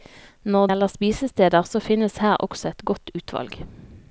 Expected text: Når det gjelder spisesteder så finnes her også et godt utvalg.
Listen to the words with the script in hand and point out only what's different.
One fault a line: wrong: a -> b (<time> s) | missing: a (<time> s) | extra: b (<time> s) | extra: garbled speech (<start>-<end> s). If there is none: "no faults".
missing: det (0.7 s)